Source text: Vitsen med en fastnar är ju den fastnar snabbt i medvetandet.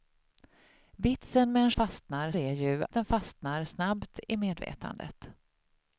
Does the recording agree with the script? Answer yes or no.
yes